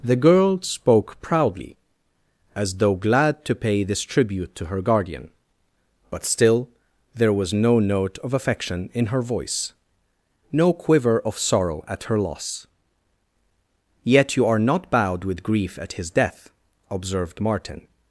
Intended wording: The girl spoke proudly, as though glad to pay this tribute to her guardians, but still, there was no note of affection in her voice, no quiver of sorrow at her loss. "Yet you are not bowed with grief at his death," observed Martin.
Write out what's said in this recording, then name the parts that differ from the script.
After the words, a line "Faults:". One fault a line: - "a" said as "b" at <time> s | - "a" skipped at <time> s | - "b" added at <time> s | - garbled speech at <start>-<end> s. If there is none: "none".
The girl spoke proudly, as though glad to pay this tribute to her guardian, but still, there was no note of affection in her voice, no quiver of sorrow at her loss. "Yet you are not bowed with grief at his death," observed Martin.
Faults:
- "guardians" said as "guardian" at 4.8 s